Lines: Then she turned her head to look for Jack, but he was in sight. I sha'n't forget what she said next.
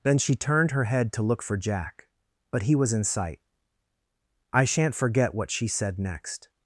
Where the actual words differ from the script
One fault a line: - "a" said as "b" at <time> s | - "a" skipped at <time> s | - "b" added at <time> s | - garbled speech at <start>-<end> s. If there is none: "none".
none